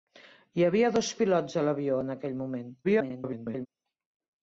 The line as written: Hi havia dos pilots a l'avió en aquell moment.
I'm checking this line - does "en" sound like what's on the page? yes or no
yes